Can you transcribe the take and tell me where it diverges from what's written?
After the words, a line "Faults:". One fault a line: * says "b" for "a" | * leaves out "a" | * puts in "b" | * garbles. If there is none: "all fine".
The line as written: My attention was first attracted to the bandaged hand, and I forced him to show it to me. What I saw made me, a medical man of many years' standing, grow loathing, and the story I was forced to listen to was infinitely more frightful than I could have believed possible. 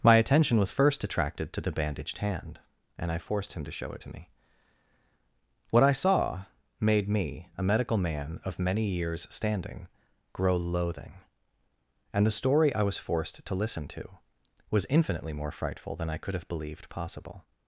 My attention was first attracted to the bandaged hand, and I forced him to show it to me. What I saw made me, a medical man of many years' standing, grow loathing, and the story I was forced to listen to was infinitely more frightful than I could have believed possible.
Faults:
all fine